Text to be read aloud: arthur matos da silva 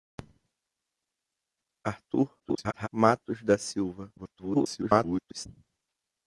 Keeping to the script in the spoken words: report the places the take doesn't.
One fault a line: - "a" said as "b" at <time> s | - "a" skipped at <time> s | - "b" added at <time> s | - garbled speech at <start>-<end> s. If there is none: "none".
- garbled speech at 2.4-2.9 s
- garbled speech at 4.2-5.5 s